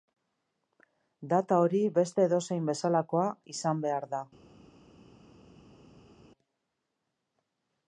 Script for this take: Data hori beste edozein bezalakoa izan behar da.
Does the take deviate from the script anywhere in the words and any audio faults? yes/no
no